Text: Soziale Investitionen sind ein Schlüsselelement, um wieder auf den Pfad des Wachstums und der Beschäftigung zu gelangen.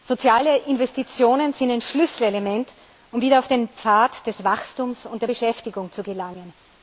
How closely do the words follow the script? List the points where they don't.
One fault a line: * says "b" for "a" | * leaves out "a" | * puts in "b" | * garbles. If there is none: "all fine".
all fine